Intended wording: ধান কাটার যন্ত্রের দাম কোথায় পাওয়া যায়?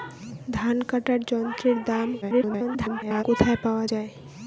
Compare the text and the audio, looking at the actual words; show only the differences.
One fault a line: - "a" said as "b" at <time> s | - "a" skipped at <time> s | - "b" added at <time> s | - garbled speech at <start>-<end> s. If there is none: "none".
- garbled speech at 2.2-3.2 s